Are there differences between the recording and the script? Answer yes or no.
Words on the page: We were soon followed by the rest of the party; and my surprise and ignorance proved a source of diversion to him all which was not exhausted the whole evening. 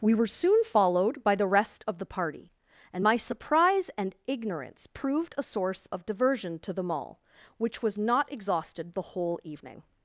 yes